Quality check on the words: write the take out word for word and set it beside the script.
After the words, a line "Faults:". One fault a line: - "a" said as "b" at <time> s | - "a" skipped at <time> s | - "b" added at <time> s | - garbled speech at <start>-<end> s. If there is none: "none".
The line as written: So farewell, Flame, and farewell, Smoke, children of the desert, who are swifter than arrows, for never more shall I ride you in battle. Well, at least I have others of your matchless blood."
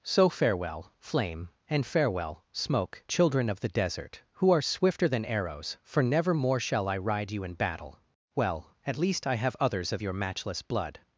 So farewell, Flame, and farewell, Smoke, children of the desert, who are swifter than arrows, for never more shall I ride you in battle. Well, at least I have others of your matchless blood."
Faults:
none